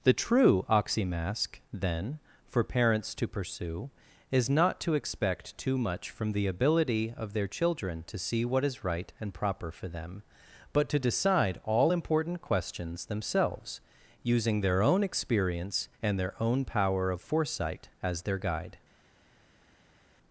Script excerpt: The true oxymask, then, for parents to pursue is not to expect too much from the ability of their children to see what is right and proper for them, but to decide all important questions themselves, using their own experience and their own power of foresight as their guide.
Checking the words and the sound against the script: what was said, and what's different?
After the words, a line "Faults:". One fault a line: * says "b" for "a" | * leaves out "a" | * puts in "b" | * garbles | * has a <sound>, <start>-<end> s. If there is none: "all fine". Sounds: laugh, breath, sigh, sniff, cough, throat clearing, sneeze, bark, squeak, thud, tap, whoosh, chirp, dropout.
The true oxymask, then, for parents to pursue is not to expect too much from the ability of their children to see what is right and proper for them, but to decide all important questions themselves, using their own experience and their own power of foresight as their guide.
Faults:
all fine